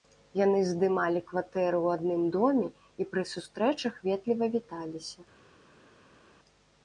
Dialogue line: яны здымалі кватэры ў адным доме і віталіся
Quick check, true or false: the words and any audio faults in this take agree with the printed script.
false